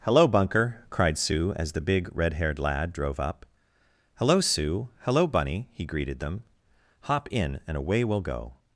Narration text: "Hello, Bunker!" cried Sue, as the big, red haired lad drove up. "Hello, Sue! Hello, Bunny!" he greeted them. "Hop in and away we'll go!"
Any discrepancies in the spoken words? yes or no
no